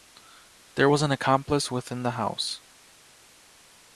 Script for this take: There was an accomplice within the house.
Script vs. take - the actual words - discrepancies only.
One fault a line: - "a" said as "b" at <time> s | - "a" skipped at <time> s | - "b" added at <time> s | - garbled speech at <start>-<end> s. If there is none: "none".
none